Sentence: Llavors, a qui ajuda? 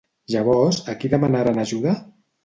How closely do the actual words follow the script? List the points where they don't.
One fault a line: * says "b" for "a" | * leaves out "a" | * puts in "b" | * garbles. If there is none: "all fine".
* puts in "demanaren"